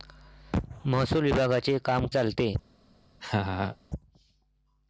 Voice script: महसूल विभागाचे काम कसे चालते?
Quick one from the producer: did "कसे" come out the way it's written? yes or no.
no